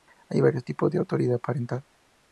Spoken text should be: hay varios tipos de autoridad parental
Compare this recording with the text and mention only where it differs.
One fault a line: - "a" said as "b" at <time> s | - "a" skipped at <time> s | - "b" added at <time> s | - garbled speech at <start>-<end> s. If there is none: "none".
none